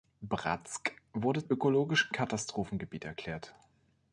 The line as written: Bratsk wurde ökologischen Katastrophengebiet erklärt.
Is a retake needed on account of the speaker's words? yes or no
no